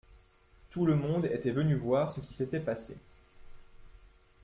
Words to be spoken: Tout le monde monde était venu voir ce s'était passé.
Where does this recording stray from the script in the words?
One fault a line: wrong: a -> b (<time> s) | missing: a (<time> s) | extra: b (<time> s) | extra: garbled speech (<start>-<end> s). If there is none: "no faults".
missing: monde (1.2 s)
extra: qui (2.2 s)